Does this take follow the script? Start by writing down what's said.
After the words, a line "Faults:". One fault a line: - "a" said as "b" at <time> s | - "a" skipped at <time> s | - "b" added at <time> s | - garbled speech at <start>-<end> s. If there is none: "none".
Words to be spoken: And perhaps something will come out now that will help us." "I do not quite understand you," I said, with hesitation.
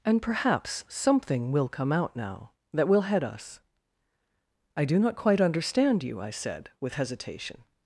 And perhaps something will come out now that will head us." "I do not quite understand you," I said, with hesitation.
Faults:
- "help" said as "head" at 3.0 s